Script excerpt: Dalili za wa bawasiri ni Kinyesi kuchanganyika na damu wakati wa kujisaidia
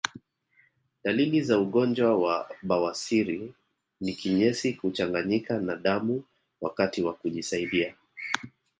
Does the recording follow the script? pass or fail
fail